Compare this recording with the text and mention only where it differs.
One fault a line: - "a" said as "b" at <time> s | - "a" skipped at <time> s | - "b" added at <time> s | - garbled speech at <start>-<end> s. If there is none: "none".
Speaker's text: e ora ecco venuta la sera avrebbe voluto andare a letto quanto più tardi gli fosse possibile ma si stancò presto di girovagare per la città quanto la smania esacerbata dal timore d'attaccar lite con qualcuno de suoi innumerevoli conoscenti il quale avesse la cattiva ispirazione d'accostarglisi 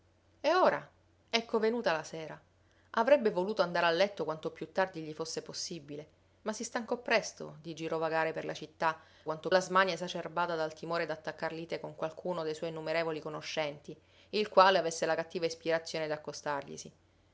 none